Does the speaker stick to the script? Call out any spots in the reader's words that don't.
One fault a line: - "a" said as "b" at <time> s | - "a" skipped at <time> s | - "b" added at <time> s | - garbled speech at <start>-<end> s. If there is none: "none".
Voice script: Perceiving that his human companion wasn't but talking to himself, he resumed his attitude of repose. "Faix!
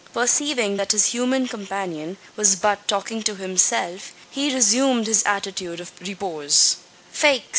- "wasn't" said as "was" at 2.4 s